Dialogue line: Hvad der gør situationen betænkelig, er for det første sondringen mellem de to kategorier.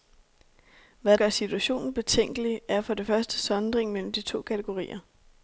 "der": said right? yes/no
no